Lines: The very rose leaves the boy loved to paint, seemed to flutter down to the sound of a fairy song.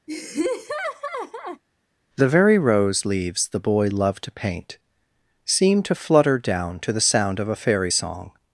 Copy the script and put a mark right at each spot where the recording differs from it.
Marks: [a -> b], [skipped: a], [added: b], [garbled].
The very rose leaves the boy loved to paint, seemed to flutter down to the sound of a fairy song.